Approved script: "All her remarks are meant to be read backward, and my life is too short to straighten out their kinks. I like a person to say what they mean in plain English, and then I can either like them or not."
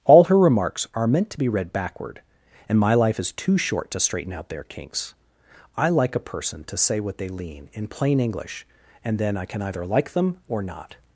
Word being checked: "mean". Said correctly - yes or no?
no